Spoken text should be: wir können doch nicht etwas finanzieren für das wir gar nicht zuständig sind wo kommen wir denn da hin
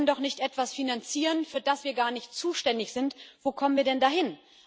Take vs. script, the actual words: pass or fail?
pass